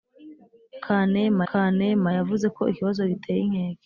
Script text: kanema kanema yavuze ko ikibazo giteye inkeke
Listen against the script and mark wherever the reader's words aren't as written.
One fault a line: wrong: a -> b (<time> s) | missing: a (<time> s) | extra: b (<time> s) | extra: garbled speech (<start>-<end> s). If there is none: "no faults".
no faults